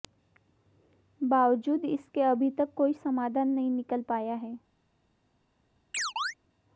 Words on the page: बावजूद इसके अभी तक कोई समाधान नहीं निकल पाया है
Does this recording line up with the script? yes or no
yes